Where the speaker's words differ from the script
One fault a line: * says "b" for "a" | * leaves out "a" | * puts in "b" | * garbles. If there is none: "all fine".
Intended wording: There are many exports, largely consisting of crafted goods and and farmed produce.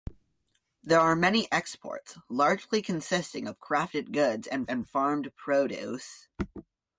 all fine